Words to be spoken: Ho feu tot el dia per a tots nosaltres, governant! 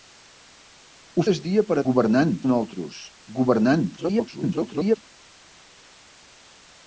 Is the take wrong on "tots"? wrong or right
wrong